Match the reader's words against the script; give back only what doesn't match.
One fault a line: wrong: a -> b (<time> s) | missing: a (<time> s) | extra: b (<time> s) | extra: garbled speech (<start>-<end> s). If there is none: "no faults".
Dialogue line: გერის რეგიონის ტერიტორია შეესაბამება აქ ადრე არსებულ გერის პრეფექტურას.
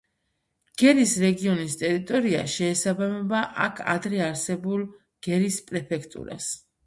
no faults